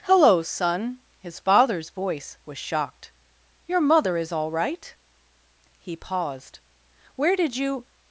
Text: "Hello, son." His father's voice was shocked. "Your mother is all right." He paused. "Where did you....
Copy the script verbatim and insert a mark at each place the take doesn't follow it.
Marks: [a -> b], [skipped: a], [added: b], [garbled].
"Hello, son." His father's voice was shocked. "Your mother is all right." He paused. "Where did you....